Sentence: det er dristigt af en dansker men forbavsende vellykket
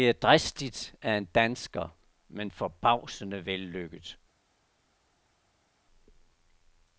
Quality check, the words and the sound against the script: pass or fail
pass